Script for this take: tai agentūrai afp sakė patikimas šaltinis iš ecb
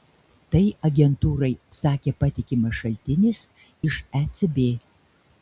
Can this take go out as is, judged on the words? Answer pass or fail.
fail